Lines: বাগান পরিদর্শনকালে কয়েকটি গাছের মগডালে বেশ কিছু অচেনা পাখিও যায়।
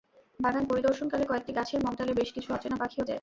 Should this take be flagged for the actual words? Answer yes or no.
no